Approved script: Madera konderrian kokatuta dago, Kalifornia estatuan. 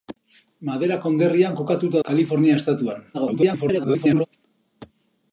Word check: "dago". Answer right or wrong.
wrong